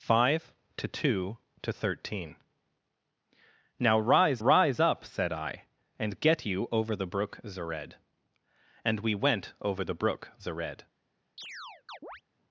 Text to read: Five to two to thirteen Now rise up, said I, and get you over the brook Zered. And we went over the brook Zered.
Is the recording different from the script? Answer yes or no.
yes